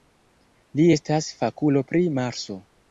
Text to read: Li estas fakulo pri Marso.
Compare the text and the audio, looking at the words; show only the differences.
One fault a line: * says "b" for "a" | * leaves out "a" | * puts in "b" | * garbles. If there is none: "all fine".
all fine